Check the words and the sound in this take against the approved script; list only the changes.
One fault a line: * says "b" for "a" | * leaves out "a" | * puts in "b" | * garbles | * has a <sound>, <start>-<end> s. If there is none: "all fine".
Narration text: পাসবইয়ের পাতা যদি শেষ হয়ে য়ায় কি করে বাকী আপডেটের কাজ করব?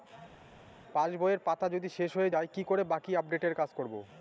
all fine